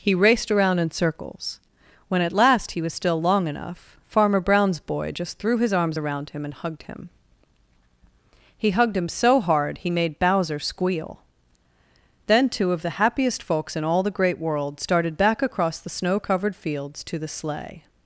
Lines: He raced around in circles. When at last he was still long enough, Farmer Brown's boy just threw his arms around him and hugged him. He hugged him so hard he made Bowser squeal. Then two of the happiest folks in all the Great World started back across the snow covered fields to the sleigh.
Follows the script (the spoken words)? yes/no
yes